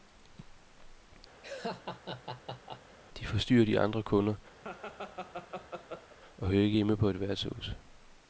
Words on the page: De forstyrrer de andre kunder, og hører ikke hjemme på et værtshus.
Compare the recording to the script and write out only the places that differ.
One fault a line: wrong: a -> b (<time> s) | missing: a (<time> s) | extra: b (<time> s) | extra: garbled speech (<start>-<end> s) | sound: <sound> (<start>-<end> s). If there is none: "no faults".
sound: laugh (1.4-3.0 s)
sound: laugh (4.6-6.2 s)